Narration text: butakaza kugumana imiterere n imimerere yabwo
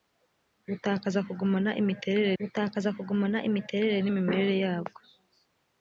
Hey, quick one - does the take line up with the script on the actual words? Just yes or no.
no